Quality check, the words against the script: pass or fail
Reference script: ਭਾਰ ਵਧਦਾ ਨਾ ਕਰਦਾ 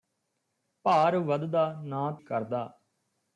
pass